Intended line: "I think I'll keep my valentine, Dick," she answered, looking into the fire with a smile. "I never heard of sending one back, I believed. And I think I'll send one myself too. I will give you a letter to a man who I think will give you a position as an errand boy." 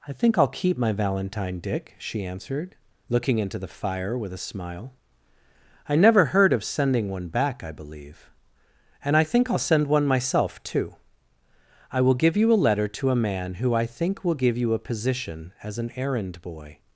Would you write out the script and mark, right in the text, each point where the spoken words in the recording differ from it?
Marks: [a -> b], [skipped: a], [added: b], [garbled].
"I think I'll keep my valentine, Dick," she answered, looking into the fire with a smile. "I never heard of sending one back, I [believed. -> believe] And I think I'll send one myself too. I will give you a letter to a man who I think will give you a position as an errand boy."